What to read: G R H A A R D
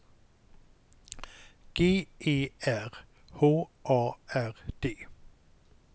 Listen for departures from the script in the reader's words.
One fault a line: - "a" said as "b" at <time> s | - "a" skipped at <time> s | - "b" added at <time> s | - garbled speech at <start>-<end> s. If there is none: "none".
- "E" added at 2.2 s
- "A" skipped at 4.1 s